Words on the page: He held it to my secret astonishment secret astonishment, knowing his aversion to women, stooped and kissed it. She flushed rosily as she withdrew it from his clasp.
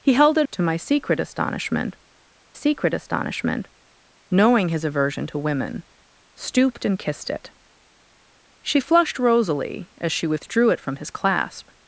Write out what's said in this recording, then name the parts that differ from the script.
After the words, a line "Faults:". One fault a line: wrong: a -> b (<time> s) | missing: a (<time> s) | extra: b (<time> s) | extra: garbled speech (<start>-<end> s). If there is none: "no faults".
He held it to my secret astonishment secret astonishment, knowing his aversion to women, stooped and kissed it. She flushed rosily as she withdrew it from his clasp.
Faults:
no faults